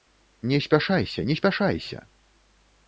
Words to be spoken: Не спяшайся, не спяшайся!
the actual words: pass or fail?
pass